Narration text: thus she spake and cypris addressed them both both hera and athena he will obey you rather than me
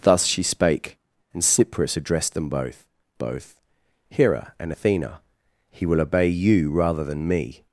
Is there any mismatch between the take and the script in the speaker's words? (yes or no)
no